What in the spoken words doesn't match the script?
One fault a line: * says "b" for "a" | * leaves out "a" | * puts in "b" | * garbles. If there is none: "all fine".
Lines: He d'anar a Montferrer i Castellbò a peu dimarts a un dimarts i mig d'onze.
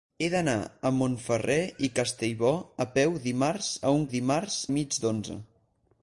all fine